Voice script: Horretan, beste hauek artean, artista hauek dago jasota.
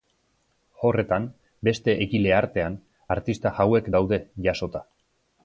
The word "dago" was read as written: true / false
false